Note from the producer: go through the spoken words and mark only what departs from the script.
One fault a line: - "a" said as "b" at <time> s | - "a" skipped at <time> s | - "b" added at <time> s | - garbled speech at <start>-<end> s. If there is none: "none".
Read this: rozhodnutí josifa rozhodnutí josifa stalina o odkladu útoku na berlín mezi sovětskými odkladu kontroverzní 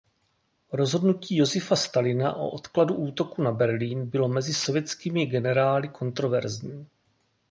- "rozhodnutí josifa" skipped at 1.8 s
- "bylo" added at 4.0 s
- "odkladu" said as "generály" at 5.2 s